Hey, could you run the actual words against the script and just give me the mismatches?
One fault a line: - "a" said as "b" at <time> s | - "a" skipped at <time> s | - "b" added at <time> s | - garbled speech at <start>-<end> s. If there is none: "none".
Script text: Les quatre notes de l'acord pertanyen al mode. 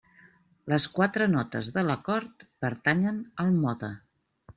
none